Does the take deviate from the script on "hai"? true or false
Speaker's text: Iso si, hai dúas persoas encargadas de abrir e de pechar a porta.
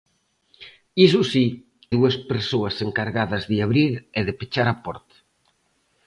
true